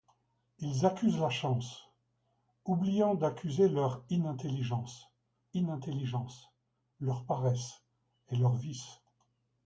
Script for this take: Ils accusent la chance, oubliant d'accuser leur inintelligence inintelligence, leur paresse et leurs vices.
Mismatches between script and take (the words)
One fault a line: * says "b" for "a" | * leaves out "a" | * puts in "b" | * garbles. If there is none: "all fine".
all fine